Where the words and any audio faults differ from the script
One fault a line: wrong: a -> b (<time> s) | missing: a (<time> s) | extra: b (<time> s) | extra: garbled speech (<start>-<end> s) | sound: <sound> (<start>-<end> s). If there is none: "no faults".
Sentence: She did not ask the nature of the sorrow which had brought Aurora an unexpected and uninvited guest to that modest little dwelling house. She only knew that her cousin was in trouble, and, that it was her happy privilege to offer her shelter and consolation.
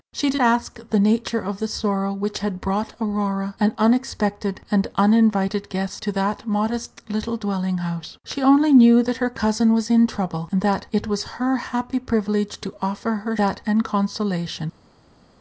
missing: not (0.4 s)
wrong: shelter -> that (13.4 s)